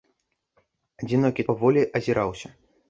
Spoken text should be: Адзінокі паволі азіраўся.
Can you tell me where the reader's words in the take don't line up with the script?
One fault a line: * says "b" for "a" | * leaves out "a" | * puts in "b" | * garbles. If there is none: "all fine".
all fine